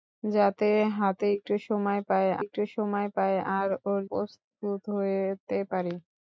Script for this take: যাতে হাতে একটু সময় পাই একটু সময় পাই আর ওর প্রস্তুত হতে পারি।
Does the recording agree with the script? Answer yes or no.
yes